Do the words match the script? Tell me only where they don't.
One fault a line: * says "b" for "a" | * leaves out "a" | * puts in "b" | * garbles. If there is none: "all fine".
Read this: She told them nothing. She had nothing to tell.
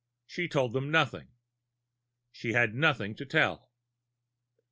all fine